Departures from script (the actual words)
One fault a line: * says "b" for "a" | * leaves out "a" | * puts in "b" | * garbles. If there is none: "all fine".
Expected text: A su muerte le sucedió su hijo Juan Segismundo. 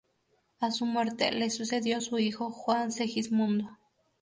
all fine